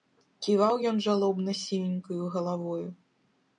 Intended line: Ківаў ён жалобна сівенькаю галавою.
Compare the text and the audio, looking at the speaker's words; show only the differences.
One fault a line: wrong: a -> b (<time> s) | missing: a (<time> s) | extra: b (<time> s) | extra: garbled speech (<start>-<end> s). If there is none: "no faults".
no faults